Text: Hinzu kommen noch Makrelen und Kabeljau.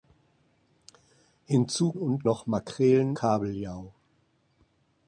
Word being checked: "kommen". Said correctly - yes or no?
no